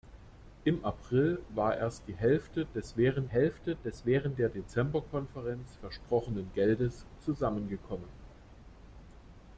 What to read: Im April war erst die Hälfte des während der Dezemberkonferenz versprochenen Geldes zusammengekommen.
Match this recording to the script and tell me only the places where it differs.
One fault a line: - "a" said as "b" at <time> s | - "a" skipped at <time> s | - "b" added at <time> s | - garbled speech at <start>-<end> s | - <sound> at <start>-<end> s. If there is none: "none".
- "Hälfte des während" added at 3.3 s